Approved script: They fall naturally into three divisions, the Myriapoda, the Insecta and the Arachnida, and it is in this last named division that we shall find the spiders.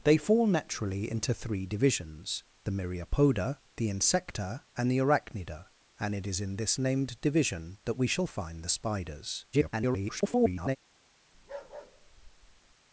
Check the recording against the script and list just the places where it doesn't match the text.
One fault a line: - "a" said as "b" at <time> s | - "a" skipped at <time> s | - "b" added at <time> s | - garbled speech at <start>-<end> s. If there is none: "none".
- "last" skipped at 6.8 s
- garbled speech at 9.5-10.8 s